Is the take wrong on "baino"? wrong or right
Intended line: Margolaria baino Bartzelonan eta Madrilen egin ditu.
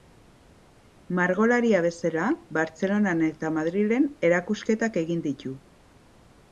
wrong